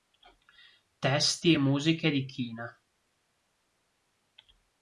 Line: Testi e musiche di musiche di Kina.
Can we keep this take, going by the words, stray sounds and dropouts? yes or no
no